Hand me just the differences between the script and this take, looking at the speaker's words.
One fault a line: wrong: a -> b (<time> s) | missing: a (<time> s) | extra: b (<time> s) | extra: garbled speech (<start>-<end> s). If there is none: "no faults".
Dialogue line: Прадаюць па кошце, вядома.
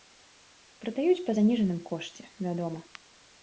extra: заніжаным (1.4 s)